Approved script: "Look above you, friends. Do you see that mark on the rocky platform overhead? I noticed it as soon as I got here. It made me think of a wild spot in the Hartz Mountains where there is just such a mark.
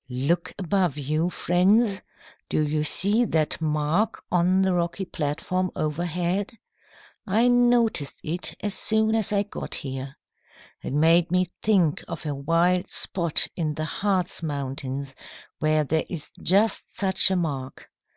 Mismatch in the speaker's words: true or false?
false